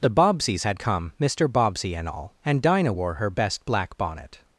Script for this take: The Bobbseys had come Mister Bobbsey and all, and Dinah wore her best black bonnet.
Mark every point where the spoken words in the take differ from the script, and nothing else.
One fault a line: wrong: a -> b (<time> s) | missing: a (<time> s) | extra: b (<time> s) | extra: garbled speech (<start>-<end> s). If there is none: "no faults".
no faults